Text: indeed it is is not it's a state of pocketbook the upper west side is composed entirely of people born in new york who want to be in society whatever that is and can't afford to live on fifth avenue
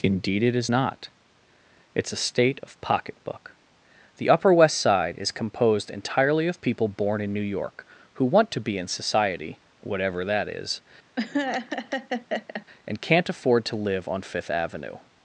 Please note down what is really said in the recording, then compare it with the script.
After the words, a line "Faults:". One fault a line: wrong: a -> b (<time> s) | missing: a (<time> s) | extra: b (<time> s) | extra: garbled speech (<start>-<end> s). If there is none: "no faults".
indeed it is not it's a state of pocketbook the upper west side is composed entirely of people born in new york who want to be in society whatever that is and can't afford to live on fifth avenue
Faults:
missing: is (0.7 s)